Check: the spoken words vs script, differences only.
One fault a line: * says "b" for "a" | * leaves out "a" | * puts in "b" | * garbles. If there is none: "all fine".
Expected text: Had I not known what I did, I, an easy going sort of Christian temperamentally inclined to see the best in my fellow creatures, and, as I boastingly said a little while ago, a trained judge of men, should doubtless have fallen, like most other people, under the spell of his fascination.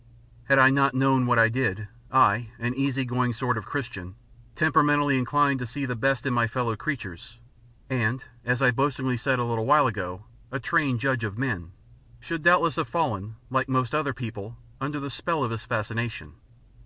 all fine